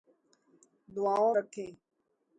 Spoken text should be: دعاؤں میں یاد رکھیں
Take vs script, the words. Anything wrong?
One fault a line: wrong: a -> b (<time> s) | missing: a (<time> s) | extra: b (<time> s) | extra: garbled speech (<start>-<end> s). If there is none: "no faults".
missing: میں یاد (1.4 s)